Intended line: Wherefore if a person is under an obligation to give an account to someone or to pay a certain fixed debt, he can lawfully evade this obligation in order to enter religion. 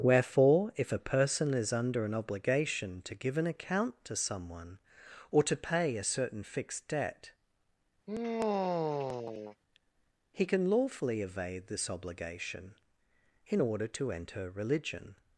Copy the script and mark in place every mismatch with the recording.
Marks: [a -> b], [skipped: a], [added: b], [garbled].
Wherefore if a person is under an obligation to give an account to someone or to pay a certain fixed debt, he can lawfully evade this obligation in order to enter religion.